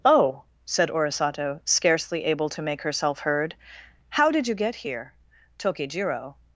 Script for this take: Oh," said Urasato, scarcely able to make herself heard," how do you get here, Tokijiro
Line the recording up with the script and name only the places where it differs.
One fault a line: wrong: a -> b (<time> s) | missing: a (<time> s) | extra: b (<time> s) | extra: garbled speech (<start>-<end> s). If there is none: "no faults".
wrong: do -> did (4.3 s)